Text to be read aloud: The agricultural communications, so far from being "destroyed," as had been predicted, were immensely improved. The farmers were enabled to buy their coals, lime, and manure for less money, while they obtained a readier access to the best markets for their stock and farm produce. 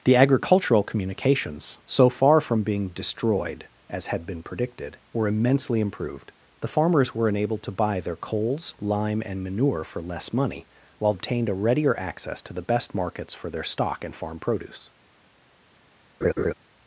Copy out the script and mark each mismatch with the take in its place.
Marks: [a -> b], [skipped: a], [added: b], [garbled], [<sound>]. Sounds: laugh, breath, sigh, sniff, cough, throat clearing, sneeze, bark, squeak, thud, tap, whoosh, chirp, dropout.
The agricultural communications, so far from being "destroyed," as had been predicted, were immensely improved. The farmers were enabled to buy their coals, lime, and manure for less money, while [skipped: they] obtained a readier access to the best markets for their stock and farm produce. [laugh]